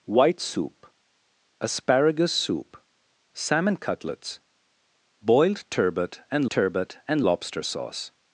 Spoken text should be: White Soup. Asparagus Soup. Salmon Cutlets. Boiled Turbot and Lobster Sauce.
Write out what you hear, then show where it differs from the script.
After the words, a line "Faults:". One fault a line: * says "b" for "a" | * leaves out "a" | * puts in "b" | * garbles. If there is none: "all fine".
White Soup. Asparagus Soup. Salmon Cutlets. Boiled Turbot and Turbot and Lobster Sauce.
Faults:
* puts in "Turbot and"